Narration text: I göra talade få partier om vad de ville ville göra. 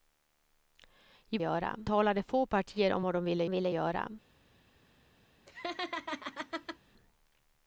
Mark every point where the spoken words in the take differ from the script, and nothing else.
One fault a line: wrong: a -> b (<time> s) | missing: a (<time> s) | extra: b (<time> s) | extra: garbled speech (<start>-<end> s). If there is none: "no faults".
no faults